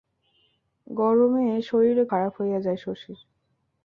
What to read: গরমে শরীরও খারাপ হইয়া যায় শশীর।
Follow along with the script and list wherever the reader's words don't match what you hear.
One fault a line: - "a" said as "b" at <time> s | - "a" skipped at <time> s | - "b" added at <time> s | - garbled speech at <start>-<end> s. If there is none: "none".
none